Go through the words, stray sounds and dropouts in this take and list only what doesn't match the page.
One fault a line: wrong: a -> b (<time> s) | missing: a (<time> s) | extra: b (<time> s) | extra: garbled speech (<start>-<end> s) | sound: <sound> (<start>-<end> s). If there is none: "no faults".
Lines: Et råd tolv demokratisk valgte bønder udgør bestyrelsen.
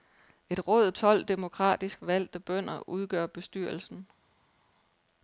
no faults